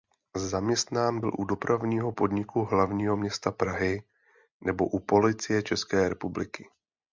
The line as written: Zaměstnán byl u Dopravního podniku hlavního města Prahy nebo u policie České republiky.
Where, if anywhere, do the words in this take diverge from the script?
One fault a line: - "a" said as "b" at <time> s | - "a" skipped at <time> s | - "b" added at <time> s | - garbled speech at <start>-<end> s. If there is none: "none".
none